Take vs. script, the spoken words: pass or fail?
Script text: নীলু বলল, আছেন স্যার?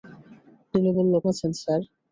pass